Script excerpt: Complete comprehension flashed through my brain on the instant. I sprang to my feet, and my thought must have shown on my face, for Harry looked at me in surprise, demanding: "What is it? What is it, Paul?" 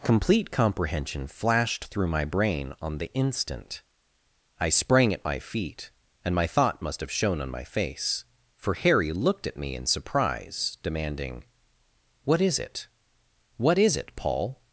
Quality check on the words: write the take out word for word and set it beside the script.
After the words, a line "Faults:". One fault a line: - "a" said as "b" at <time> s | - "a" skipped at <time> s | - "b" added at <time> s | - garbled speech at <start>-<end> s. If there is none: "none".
Complete comprehension flashed through my brain on the instant. I sprang at my feet, and my thought must have shown on my face, for Harry looked at me in surprise, demanding: "What is it? What is it, Paul?"
Faults:
- "to" said as "at" at 5.1 s